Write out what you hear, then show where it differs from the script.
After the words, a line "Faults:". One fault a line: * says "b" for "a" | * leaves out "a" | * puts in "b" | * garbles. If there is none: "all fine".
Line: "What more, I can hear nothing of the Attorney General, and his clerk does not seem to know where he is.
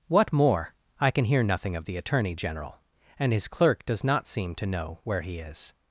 "What more, I can hear nothing of the Attorney General, and his clerk does not seem to know where he is.
Faults:
all fine